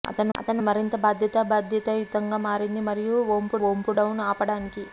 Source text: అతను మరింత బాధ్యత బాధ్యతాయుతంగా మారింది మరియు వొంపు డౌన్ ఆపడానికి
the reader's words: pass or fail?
fail